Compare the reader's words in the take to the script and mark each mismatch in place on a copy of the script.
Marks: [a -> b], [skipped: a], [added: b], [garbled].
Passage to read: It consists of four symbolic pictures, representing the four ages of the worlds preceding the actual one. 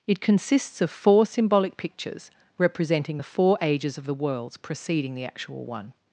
It consists of four symbolic pictures, representing the four ages of the worlds preceding the actual one.